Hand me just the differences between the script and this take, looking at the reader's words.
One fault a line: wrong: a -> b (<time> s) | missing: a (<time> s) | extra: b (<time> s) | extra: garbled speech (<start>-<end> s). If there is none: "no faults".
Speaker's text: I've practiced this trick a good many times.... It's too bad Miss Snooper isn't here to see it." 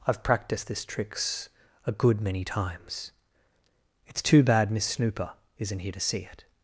wrong: trick -> tricks (0.9 s)